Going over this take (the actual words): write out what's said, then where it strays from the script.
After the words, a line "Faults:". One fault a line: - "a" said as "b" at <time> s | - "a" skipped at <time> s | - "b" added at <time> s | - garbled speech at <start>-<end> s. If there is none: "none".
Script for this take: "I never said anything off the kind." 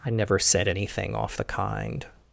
"I never said anything off the kind."
Faults:
none